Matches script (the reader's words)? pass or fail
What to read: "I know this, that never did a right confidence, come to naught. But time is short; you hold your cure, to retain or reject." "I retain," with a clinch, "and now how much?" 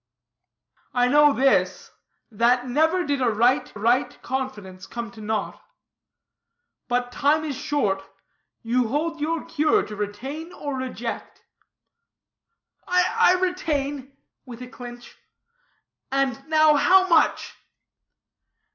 fail